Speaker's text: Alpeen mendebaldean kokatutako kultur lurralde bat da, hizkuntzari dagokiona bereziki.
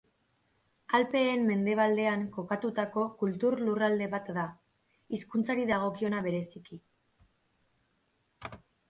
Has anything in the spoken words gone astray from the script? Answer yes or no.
no